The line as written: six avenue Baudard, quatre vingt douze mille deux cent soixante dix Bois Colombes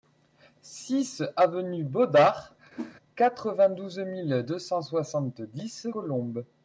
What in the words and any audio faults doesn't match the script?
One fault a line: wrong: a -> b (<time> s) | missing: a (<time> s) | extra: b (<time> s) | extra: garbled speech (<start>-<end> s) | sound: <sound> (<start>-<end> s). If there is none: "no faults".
sound: whoosh (2.7-2.9 s)
missing: Bois (5.9 s)